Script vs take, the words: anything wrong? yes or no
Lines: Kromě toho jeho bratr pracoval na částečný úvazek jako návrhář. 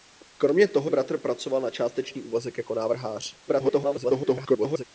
yes